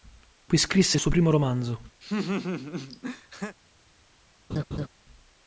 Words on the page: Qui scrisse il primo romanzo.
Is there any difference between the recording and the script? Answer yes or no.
yes